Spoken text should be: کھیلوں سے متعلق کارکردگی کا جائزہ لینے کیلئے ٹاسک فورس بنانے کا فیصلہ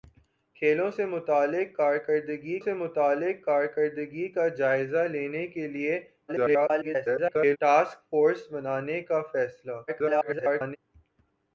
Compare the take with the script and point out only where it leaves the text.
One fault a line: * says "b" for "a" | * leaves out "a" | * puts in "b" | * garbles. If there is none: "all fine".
* puts in "سے متعلق کارکردگی"
* garbles
* garbles